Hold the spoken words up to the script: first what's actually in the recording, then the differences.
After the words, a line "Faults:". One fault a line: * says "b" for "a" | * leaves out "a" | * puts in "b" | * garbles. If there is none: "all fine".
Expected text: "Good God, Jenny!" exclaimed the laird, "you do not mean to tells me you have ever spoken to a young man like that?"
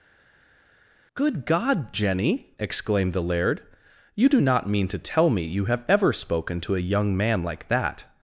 "Good God, Jenny!" exclaimed the laird, "you do not mean to tell me you have ever spoken to a young man like that?"
Faults:
* says "tell" for "tells"